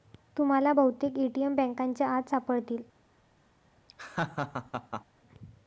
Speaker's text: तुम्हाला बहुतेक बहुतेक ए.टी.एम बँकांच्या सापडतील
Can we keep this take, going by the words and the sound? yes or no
no